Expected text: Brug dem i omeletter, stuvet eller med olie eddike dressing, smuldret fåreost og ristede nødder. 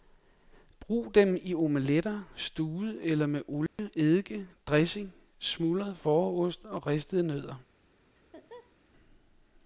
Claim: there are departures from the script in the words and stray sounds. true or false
true